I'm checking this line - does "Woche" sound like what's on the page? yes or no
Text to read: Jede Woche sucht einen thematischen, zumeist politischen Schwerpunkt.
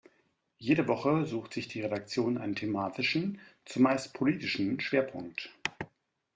yes